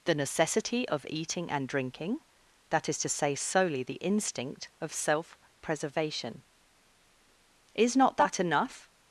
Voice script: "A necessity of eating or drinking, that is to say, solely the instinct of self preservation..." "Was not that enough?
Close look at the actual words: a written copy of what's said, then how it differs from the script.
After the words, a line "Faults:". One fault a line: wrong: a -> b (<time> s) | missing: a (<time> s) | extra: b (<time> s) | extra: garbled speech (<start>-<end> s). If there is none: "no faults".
"The necessity of eating and drinking, that is to say, solely the instinct of self preservation..." "Is not that enough?
Faults:
wrong: A -> The (0.1 s)
wrong: or -> and (1.5 s)
wrong: Was -> Is (7.8 s)